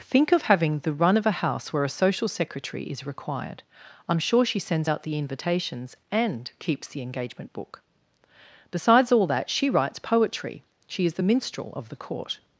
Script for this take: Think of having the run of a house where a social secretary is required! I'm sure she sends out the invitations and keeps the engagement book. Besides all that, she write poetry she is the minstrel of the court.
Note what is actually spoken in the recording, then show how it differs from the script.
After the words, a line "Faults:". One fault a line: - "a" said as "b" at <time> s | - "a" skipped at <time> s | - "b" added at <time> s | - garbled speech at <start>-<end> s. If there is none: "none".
Think of having the run of a house where a social secretary is required! I'm sure she sends out the invitations and keeps the engagement book. Besides all that, she writes poetry she is the minstrel of the court.
Faults:
- "write" said as "writes" at 9.7 s